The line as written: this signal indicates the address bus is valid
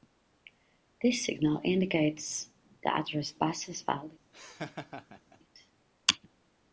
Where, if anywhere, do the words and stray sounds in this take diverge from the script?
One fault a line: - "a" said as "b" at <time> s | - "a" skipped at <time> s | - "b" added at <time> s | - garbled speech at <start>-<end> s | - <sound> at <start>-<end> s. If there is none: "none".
- laugh at 4.3-5.4 s